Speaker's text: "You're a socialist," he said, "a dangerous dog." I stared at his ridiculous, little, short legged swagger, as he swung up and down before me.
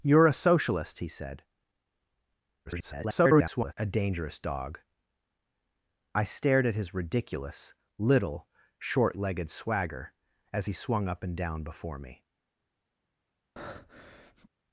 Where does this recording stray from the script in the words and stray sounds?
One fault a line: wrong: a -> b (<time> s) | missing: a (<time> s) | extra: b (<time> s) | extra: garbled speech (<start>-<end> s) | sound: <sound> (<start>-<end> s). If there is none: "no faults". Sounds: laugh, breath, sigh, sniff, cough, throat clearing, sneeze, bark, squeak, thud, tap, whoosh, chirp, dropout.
extra: garbled speech (2.7-3.7 s)
sound: breath (13.6-14.5 s)